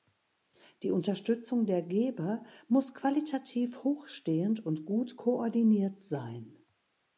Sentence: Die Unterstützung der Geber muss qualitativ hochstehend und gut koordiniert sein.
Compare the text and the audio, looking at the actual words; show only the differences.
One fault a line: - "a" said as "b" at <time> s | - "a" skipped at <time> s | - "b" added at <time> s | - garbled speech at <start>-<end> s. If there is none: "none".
none